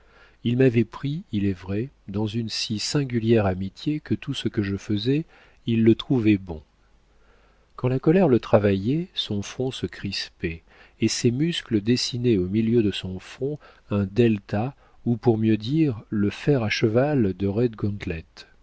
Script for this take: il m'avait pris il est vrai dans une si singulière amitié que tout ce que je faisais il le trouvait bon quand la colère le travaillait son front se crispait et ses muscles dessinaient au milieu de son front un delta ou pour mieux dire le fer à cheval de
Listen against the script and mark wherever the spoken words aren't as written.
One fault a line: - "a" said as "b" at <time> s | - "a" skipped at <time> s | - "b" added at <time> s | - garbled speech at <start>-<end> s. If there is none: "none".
none